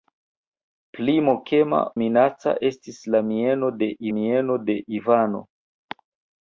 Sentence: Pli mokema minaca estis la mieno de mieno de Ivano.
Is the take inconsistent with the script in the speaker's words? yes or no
no